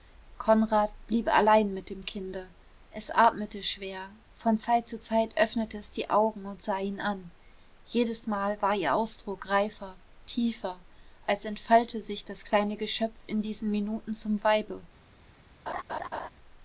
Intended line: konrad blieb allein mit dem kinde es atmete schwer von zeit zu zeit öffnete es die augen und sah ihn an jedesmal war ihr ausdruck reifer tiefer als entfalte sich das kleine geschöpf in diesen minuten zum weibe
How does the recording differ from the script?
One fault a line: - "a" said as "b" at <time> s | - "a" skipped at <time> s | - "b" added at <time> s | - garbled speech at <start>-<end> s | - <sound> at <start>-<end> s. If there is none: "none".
- laugh at 15.7-16.3 s